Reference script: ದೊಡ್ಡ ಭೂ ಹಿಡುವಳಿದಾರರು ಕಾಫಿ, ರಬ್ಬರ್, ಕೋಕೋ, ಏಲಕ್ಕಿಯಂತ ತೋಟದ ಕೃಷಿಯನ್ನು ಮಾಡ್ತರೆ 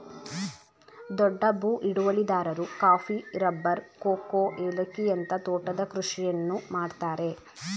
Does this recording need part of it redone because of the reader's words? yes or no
no